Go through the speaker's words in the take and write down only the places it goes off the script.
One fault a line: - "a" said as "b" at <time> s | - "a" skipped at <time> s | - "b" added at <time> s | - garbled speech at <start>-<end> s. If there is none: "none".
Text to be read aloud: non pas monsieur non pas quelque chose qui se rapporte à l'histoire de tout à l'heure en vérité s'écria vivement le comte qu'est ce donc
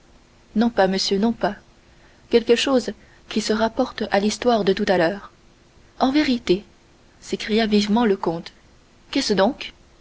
none